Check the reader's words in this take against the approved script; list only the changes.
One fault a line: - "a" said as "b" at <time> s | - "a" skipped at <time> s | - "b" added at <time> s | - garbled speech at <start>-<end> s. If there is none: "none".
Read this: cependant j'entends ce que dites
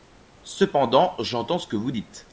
- "vous" added at 1.8 s